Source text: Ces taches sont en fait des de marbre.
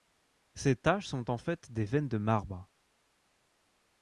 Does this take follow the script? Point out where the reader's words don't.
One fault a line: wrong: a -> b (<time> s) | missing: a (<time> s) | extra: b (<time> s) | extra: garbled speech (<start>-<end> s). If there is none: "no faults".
extra: veines (1.8 s)